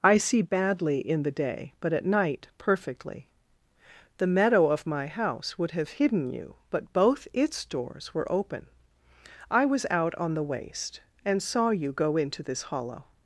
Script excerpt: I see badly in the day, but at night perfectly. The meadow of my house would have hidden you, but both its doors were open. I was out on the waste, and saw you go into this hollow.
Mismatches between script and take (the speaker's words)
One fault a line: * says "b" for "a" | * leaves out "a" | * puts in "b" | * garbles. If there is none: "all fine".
all fine